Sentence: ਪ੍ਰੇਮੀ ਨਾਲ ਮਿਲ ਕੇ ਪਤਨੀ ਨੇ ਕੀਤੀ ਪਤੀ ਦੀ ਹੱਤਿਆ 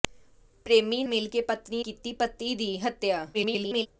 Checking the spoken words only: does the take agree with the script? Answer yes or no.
no